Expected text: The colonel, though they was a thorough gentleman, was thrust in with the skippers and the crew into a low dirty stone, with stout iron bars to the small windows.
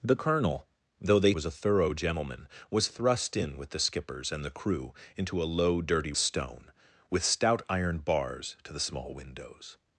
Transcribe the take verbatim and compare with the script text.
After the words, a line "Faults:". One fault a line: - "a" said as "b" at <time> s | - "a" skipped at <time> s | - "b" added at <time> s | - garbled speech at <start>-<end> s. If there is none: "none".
The colonel, though they was a thorough gentleman, was thrust in with the skippers and the crew into a low dirty stone, with stout iron bars to the small windows.
Faults:
none